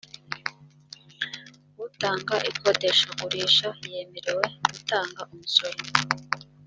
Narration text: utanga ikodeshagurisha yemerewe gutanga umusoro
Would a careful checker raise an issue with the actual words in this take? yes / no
no